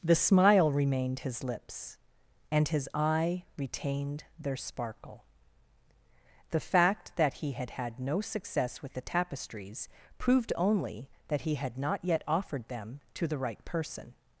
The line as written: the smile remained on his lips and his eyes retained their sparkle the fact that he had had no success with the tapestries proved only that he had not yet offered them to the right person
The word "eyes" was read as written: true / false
false